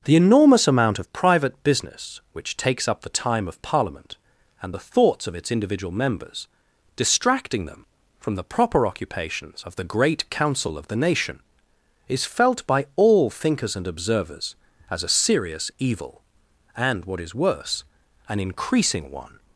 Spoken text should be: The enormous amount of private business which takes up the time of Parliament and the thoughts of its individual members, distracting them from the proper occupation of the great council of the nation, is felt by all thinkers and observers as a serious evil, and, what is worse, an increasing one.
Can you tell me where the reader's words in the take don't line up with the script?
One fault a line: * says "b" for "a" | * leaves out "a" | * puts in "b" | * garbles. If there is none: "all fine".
* says "occupations" for "occupation"